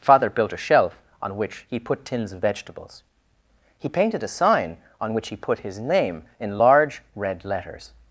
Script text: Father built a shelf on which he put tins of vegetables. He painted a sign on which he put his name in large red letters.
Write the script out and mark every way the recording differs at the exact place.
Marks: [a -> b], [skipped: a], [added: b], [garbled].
Father built a shelf on which he put tins of vegetables. He painted a sign on which he put his name in large red letters.